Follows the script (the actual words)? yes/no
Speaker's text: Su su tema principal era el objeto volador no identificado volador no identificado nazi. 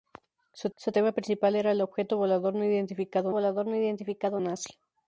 yes